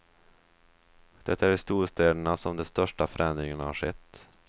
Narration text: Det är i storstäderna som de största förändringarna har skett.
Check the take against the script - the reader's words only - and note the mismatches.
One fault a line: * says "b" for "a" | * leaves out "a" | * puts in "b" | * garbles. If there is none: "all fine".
all fine